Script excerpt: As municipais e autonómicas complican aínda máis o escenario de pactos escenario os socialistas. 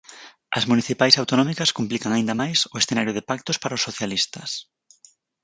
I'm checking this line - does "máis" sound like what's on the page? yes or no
yes